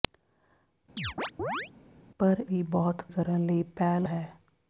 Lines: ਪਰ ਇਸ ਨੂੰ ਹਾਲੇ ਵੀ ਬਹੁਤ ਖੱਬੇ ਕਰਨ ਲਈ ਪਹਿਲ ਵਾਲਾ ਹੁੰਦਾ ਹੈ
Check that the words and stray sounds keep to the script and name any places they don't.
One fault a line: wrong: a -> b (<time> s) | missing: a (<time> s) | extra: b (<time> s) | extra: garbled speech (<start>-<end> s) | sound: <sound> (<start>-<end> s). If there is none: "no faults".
sound: chirp (1.0-1.7 s)
missing: ਇਸ ਨੂੰ ਹਾਲੇ (2.4 s)
missing: ਖੱਬੇ (3.0 s)
missing: ਵਾਲਾ ਹੁੰਦਾ (4.1 s)